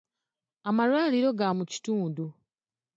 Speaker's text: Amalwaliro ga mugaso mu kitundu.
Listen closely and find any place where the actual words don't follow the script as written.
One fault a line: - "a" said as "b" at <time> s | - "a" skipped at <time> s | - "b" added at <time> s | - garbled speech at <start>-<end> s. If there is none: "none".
- "mugaso" skipped at 1.5 s